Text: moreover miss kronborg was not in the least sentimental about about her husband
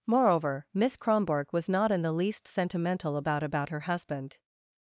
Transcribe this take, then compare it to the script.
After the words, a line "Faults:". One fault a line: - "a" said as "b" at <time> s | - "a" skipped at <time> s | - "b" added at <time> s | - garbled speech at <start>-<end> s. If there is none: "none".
moreover miss kronborg was not in the least sentimental about about her husband
Faults:
none